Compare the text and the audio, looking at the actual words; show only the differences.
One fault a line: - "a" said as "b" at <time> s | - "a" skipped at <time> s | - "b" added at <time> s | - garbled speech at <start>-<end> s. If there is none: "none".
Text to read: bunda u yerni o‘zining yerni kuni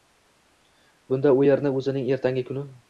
- "yerni" said as "ertangi" at 2.2 s